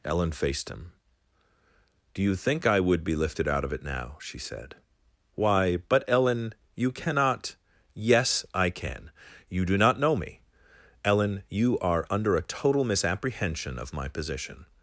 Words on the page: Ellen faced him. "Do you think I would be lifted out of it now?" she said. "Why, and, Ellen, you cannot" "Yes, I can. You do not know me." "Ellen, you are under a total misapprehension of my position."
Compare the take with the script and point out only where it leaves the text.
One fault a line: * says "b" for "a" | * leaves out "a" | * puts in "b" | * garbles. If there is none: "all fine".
* says "but" for "and"